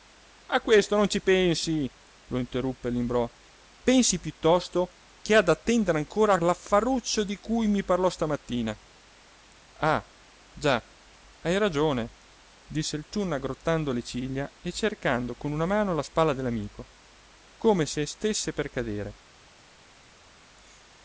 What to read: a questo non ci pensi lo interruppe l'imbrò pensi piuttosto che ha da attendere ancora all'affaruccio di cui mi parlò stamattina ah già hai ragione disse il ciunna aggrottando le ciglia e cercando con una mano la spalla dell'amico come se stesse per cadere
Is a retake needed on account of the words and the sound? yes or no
no